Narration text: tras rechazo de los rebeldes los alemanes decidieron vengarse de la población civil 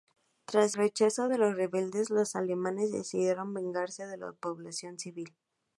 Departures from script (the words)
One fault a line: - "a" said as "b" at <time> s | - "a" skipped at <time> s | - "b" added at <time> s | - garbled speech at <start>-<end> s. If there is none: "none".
none